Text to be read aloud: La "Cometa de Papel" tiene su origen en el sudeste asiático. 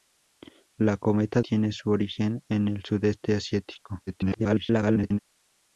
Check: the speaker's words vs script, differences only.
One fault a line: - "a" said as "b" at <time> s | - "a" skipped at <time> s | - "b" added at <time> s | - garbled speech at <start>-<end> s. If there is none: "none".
- "de Papel" skipped at 1.4 s
- garbled speech at 4.1-5.2 s